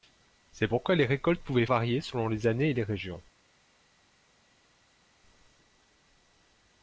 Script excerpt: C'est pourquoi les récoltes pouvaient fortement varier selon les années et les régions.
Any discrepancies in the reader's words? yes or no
yes